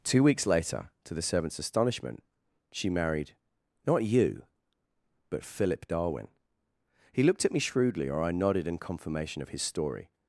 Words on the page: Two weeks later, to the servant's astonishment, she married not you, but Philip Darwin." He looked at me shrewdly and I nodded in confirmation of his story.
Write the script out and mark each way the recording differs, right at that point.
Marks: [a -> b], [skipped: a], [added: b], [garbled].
Two weeks later, to the servant's astonishment, she married not you, but Philip Darwin." He looked at me shrewdly [and -> or] I nodded in confirmation of his story.